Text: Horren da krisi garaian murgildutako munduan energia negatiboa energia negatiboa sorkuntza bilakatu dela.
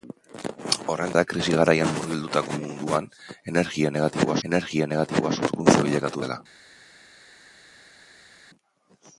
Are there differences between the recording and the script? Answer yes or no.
no